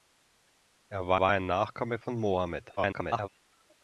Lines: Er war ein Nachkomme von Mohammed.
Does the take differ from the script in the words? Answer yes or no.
yes